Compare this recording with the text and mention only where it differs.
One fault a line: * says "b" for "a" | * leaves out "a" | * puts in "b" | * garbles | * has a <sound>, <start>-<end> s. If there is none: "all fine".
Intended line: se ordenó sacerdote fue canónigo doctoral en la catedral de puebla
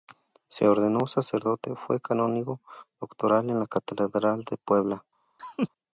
* has a laugh, 5.4-5.7 s